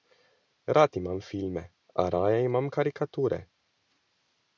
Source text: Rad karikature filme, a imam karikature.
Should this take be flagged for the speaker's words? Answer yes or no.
yes